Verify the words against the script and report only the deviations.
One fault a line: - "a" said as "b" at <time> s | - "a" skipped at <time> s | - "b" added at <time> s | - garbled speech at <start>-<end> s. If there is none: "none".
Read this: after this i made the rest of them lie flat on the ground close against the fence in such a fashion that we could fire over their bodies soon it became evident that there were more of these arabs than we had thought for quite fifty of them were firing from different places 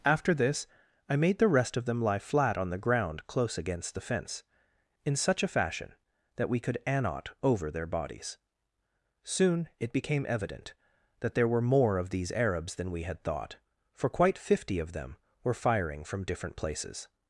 - "fire" said as "annot" at 6.9 s